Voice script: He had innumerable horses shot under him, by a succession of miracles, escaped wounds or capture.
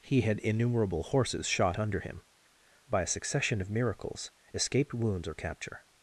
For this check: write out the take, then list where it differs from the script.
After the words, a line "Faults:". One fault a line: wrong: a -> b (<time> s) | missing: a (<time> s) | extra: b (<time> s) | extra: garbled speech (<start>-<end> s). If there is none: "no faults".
He had innumerable horses shot under him, by a succession of miracles, escaped wounds or capture.
Faults:
no faults